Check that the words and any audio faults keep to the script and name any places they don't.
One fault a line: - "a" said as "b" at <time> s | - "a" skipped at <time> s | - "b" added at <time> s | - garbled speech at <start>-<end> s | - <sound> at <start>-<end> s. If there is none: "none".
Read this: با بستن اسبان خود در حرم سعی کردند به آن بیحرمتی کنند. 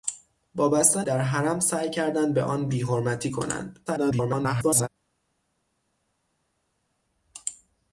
- "اسبان خود" skipped at 1.1 s
- garbled speech at 3.9-4.9 s